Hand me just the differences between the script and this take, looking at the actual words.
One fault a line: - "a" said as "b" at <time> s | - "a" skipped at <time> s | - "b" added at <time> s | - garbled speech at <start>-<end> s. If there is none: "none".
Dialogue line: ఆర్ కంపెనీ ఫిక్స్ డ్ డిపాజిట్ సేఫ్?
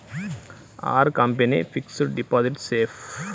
none